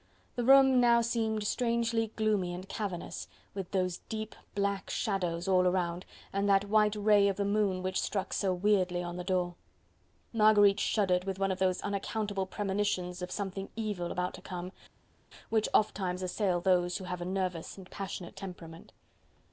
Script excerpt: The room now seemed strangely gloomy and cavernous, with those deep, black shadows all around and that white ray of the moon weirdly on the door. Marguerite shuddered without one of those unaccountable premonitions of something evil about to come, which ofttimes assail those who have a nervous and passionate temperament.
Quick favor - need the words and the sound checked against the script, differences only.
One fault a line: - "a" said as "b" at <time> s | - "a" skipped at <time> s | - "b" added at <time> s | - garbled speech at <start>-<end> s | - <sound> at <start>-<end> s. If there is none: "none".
- "which struck so" added at 7.8 s
- "without" said as "with" at 11.3 s